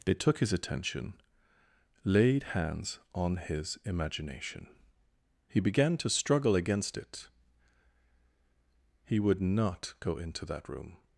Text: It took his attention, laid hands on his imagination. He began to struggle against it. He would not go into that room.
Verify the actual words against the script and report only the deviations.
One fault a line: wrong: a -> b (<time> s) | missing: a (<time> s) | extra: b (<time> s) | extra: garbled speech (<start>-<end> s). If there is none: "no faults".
wrong: It -> They (0.1 s)